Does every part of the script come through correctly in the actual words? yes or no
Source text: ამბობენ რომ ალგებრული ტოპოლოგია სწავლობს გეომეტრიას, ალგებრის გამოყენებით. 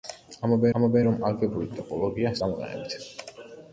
no